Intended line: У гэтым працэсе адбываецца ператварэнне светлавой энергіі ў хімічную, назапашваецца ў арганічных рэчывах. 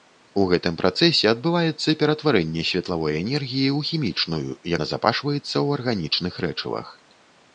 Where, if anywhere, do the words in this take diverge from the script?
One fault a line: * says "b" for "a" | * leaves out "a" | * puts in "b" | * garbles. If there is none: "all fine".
all fine